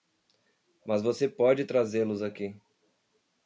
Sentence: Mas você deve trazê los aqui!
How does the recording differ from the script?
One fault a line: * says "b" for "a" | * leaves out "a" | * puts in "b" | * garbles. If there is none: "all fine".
* says "pode" for "deve"